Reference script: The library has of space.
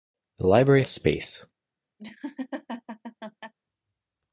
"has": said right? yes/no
no